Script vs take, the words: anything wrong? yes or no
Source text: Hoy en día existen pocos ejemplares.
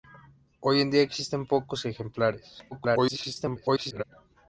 yes